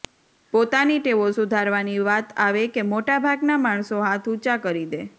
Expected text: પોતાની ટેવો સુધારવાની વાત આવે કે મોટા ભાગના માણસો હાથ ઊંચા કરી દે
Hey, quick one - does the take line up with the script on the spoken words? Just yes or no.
yes